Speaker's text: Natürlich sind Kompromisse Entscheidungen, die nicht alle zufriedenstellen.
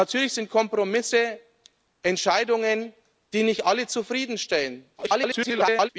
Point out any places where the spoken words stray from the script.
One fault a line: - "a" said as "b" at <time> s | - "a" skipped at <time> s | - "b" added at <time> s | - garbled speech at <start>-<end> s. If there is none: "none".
- garbled speech at 5.0-5.9 s